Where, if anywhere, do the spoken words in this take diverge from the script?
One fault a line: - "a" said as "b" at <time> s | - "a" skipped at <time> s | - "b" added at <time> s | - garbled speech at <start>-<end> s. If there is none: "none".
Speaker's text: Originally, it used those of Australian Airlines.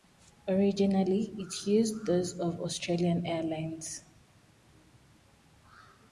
none